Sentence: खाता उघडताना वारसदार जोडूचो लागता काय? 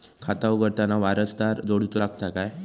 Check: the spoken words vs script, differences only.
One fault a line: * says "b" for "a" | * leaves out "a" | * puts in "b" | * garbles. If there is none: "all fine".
all fine